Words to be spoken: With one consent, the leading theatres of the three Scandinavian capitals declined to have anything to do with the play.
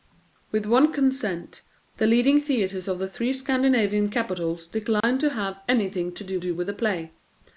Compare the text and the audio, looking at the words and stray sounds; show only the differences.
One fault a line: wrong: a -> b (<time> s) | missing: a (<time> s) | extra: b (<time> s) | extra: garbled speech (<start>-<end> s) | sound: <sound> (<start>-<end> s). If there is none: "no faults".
sound: dropout (5.0-5.0 s)
extra: do (6.4 s)